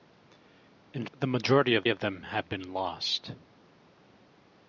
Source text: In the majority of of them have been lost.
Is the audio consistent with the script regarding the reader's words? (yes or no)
yes